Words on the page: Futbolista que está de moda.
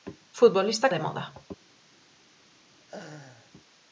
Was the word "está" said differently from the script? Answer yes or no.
yes